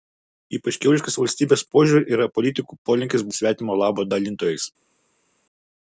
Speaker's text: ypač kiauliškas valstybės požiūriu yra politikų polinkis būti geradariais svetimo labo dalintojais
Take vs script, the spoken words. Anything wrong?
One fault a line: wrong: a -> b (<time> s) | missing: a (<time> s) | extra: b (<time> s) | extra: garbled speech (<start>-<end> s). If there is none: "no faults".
missing: būti geradariais (3.2 s)